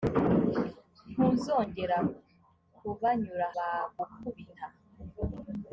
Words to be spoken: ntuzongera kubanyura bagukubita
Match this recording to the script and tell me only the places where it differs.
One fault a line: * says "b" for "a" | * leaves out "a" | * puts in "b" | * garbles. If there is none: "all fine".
all fine